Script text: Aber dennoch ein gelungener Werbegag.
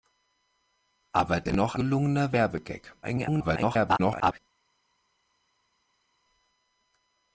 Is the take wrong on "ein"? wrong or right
wrong